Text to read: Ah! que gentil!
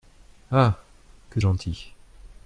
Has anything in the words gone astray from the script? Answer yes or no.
no